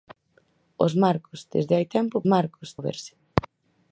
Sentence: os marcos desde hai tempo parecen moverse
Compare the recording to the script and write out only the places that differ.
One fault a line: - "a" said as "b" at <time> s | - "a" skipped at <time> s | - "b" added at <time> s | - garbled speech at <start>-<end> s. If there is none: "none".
- "parecen" said as "marcos" at 2.3 s